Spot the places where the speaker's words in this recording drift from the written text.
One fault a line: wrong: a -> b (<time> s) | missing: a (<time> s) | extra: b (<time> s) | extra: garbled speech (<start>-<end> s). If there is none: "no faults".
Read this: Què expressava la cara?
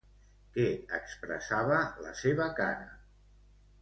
extra: seva (2.2 s)